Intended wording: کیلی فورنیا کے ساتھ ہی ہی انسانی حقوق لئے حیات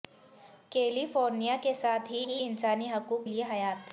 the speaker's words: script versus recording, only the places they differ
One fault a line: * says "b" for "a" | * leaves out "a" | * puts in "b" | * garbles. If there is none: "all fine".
all fine